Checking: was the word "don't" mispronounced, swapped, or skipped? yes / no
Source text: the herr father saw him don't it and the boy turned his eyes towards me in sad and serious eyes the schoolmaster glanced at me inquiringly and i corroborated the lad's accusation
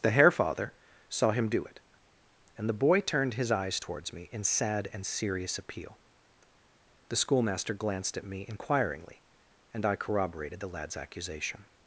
yes